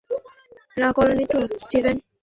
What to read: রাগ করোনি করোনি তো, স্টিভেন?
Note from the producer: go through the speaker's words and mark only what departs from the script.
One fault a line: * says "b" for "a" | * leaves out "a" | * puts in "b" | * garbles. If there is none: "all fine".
* leaves out "করোনি"